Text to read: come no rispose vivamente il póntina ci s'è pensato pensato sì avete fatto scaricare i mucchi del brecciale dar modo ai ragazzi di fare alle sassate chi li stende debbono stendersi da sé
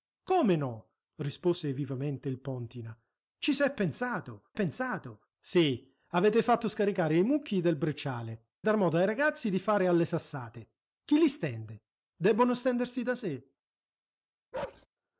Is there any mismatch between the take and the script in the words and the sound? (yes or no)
yes